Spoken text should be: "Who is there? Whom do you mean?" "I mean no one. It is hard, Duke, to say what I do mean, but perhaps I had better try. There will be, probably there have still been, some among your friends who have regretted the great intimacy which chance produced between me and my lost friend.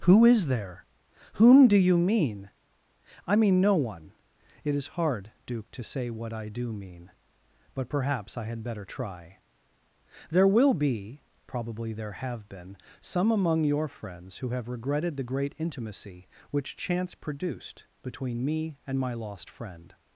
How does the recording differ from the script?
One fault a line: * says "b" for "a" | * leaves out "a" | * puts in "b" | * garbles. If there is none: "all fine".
* leaves out "still"